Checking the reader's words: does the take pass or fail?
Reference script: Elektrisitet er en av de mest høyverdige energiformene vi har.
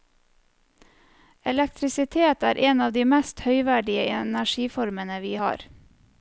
pass